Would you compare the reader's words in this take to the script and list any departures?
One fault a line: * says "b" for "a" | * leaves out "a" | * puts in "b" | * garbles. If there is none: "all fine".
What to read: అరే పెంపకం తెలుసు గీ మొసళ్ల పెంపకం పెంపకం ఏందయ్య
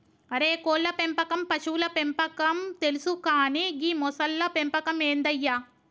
* puts in "కోళ్ళ"
* puts in "పశువుల పెంపకం"
* puts in "కానీ"
* leaves out "పెంపకం"